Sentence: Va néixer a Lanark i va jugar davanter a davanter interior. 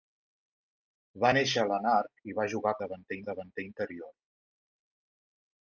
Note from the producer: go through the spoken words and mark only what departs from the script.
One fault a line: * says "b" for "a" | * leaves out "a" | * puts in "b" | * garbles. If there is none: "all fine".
all fine